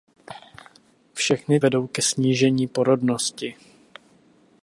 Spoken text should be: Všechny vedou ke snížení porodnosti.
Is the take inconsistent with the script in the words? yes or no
no